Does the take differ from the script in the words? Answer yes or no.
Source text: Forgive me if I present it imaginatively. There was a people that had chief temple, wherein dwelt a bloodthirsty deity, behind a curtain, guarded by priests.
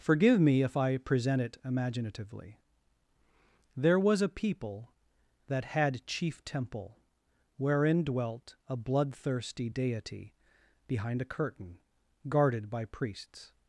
no